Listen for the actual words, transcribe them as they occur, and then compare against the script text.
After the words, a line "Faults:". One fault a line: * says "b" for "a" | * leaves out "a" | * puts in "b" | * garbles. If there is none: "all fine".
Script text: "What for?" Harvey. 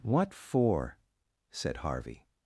"What for?" said Harvey.
Faults:
* puts in "said"